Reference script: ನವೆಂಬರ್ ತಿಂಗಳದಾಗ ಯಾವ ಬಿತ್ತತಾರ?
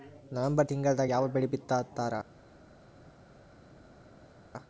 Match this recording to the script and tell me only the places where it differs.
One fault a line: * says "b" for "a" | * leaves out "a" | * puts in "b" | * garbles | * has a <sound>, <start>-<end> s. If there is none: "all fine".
* puts in "ಬೆಳಿ"